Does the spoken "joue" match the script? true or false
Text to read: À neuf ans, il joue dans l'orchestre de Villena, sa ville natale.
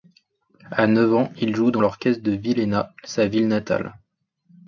true